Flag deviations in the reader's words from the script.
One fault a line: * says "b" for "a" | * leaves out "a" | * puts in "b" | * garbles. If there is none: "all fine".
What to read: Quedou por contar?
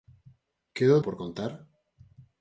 all fine